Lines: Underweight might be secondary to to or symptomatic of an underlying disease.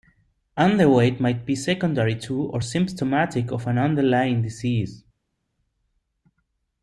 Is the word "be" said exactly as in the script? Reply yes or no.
yes